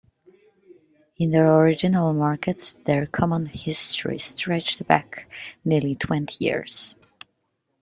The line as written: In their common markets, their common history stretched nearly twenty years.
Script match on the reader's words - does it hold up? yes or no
no